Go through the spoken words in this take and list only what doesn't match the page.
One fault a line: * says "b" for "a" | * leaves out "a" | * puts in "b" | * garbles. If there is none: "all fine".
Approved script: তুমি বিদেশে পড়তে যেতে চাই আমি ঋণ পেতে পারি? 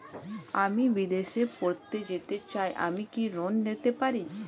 * says "আমি" for "তুমি"
* puts in "কি"